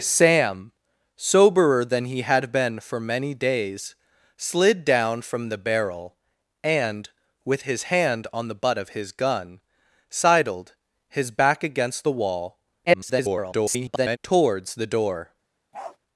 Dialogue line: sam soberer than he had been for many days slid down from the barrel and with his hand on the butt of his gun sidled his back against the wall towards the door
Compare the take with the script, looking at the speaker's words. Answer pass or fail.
fail